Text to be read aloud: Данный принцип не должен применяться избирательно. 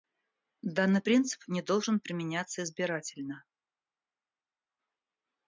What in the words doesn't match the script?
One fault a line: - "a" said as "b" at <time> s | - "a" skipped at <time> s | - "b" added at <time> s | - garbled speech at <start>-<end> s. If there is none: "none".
none